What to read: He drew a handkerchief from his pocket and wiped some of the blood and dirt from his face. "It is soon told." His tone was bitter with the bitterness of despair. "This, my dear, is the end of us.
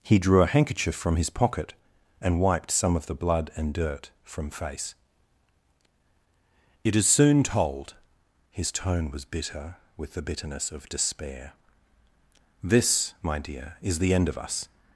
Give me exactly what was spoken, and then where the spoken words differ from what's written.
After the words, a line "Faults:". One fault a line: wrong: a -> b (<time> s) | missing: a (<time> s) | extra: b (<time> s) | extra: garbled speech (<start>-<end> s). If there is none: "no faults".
He drew a handkerchief from his pocket and wiped some of the blood and dirt from face. "It is soon told." His tone was bitter with the bitterness of despair. "This, my dear, is the end of us.
Faults:
missing: his (4.5 s)